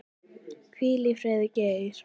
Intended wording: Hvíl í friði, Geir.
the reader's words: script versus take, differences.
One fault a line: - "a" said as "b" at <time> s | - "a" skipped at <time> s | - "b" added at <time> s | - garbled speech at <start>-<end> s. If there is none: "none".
none